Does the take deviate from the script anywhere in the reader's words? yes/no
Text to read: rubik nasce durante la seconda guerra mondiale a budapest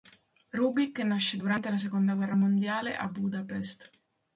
no